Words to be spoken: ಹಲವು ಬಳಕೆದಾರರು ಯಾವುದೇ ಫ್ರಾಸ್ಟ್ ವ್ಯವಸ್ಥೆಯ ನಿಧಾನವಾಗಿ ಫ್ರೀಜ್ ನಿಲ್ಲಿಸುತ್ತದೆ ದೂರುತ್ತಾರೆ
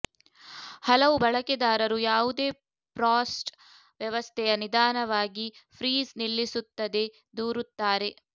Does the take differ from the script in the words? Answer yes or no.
no